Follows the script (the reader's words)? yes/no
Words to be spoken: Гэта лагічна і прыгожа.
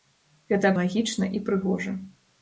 yes